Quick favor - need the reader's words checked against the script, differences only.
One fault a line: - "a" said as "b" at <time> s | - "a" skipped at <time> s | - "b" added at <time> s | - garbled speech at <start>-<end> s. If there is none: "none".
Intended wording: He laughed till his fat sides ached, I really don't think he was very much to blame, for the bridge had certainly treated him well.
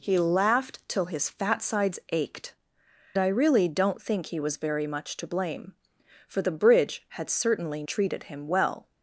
none